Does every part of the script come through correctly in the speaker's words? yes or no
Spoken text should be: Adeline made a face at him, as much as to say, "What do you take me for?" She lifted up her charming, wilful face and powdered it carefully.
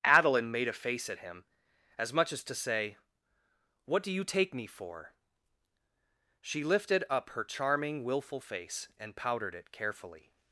yes